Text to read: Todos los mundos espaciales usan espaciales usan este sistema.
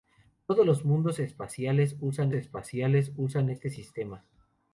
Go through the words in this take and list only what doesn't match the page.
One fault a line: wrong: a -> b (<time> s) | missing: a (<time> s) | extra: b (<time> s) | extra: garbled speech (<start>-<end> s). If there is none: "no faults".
no faults